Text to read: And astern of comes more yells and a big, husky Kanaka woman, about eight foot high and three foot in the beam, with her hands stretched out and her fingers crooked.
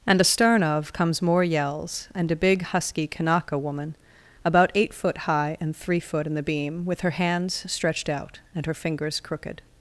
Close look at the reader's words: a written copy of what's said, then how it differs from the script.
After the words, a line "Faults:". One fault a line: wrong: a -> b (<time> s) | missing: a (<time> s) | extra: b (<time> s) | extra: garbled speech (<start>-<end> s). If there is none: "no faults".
And astern of comes more yells and a big, husky Kanaka woman, about eight foot high and three foot in the beam, with her hands stretched out and her fingers crooked.
Faults:
no faults